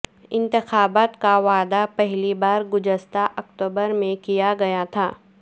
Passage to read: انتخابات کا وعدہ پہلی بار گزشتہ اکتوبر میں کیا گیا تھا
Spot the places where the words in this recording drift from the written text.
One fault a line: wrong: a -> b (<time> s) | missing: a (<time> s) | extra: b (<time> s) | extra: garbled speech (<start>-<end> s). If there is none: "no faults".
no faults